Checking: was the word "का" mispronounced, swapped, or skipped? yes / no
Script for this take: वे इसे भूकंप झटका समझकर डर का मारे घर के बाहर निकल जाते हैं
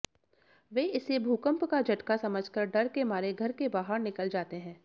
yes